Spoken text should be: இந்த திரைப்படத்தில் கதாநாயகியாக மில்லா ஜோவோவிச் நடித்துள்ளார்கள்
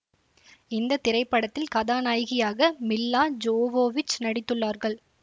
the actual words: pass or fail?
pass